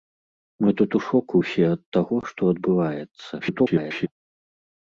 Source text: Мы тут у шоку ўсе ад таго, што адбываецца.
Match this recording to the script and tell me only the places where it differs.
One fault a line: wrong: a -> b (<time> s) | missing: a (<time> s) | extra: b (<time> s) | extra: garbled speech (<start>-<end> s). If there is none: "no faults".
extra: garbled speech (3.4-4.1 s)